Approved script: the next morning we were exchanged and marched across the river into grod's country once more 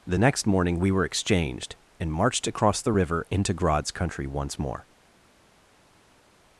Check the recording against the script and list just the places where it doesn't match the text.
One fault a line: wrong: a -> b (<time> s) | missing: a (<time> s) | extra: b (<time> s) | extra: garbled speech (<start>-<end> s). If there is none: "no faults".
no faults